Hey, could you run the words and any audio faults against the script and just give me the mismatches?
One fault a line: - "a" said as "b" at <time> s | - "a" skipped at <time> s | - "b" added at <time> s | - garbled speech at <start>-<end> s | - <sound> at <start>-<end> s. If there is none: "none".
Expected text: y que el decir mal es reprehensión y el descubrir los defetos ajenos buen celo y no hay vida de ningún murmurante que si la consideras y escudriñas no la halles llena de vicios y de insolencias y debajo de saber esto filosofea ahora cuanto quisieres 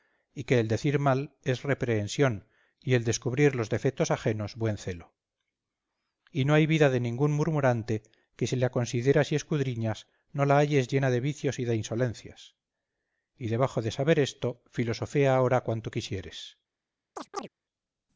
- chirp at 17.2-17.5 s